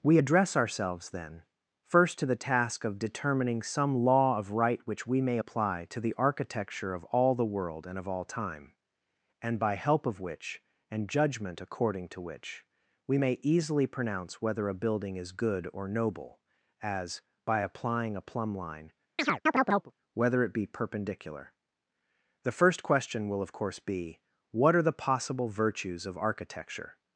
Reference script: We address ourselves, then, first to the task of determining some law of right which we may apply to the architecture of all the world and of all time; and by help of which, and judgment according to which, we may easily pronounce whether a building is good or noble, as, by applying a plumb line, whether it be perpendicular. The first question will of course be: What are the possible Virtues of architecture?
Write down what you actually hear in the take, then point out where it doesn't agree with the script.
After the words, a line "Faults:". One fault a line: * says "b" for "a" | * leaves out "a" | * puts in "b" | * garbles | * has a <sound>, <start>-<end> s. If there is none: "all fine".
We address ourselves, then, first to the task of determining some law of right which we may apply to the architecture of all the world and of all time; and by help of which, and judgment according to which, we may easily pronounce whether a building is good or noble, as, by applying a plumb line, whether it be perpendicular. The first question will of course be: What are the possible Virtues of architecture?
Faults:
* has a chirp, 19.2-19.9 s